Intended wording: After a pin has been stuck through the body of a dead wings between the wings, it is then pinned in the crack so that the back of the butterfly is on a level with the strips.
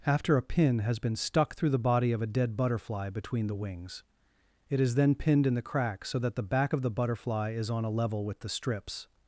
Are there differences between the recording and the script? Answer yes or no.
yes